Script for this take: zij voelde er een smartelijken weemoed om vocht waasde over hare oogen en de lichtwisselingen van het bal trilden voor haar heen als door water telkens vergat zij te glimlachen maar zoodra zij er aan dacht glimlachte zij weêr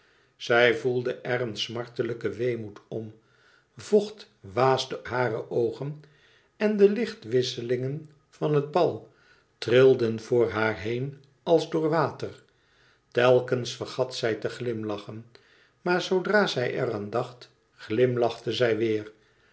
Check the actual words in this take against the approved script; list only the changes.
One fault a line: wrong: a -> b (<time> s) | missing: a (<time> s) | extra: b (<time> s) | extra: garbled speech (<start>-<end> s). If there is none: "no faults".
missing: over (5.0 s)